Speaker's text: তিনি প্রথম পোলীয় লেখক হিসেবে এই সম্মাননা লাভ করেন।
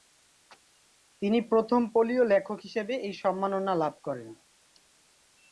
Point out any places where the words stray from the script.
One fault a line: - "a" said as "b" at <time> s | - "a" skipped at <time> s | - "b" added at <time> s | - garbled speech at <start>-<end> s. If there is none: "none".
none